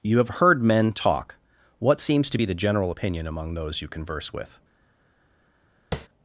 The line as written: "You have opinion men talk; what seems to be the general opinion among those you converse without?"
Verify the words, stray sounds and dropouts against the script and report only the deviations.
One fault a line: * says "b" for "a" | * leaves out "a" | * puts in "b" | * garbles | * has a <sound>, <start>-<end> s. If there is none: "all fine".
* says "heard" for "opinion"
* says "with" for "without"
* has a tap, 5.9-6.1 s